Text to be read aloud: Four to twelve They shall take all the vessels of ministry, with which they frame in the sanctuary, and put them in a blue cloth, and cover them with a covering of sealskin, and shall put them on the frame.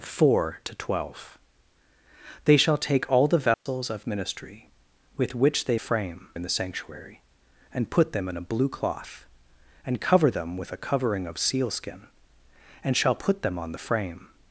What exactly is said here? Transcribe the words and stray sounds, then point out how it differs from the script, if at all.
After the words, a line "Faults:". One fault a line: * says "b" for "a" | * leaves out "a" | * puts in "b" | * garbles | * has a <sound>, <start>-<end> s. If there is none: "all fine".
Four to twelve They shall take all the vessels of ministry, with which they frame in the sanctuary, and put them in a blue cloth, and cover them with a covering of sealskin, and shall put them on the frame.
Faults:
* has a dropout, 3.5-3.7 s